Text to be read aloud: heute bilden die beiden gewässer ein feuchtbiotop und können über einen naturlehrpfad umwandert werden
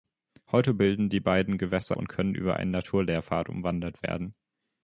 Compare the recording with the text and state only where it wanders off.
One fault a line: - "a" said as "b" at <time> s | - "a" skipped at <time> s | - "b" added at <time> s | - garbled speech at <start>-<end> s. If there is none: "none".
- "ein feuchtbiotop" skipped at 1.9 s